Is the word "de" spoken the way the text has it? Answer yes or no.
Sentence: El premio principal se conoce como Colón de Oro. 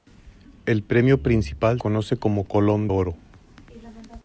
no